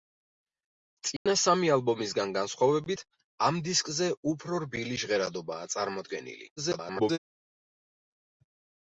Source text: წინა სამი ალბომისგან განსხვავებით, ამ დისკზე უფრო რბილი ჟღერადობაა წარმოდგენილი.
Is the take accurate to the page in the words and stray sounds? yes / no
no